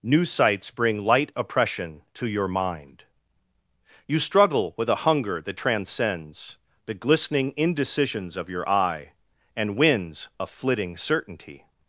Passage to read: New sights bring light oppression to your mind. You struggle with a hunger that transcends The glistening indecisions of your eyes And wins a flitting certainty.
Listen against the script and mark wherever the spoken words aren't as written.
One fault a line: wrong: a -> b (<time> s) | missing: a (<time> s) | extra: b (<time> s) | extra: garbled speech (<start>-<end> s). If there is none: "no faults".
wrong: eyes -> eye (8.7 s)